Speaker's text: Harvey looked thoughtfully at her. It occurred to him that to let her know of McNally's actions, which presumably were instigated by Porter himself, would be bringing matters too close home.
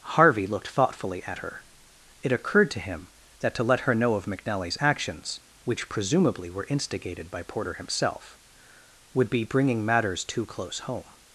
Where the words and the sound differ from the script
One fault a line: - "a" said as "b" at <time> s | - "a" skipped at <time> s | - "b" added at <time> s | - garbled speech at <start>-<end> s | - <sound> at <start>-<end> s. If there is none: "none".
none